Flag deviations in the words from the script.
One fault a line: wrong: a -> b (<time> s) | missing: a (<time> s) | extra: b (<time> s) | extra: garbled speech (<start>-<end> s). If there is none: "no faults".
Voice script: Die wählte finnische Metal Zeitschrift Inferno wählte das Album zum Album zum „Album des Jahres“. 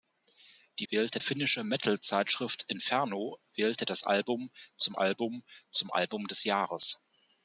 no faults